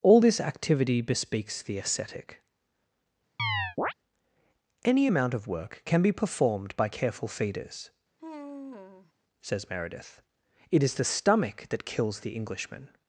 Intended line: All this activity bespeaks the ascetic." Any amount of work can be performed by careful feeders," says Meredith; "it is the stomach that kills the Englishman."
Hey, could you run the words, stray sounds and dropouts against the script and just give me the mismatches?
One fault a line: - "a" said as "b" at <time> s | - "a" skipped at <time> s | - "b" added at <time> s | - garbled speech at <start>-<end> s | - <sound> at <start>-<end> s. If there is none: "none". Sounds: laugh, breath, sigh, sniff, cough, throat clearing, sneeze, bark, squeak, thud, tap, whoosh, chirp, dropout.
- chirp at 3.4-3.9 s
- sigh at 8.2-9.1 s